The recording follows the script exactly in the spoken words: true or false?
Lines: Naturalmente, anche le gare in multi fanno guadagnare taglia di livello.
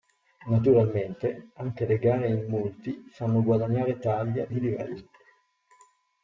true